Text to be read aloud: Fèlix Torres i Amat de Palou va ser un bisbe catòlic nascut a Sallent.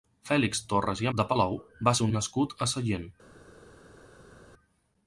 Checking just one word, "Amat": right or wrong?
wrong